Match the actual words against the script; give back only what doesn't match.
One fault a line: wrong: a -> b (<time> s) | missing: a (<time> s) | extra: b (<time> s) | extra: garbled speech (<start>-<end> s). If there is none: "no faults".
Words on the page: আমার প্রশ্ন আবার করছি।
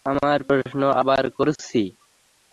no faults